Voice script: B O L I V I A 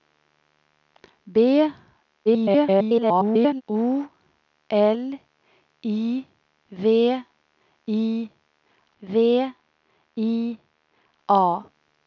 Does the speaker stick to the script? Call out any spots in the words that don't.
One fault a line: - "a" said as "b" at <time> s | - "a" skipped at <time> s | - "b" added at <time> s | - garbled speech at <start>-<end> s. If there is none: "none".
- garbled speech at 2.3-3.6 s
- "V I" added at 9.0 s